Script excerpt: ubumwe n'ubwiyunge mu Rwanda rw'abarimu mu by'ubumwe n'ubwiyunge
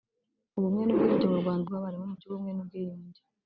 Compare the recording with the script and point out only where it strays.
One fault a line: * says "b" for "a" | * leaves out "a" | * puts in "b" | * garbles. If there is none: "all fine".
all fine